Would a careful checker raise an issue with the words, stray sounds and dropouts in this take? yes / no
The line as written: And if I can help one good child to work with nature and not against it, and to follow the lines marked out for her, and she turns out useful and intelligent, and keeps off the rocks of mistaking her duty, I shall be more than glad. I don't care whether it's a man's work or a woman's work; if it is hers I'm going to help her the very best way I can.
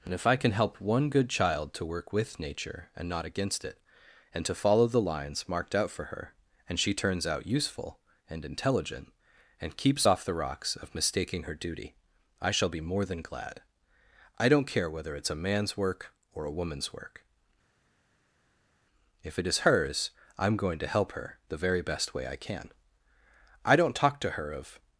yes